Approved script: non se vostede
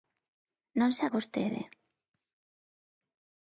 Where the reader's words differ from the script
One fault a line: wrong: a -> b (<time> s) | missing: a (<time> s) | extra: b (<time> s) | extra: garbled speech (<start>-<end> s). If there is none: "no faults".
no faults